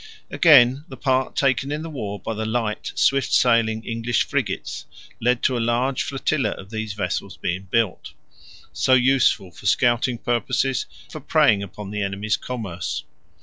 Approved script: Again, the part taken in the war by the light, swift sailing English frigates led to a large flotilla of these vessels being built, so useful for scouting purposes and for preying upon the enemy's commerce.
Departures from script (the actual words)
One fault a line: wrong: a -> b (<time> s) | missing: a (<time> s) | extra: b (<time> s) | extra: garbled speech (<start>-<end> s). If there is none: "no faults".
missing: and (10.9 s)